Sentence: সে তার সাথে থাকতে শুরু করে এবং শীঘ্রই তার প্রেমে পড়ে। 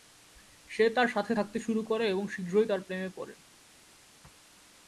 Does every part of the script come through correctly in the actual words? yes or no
yes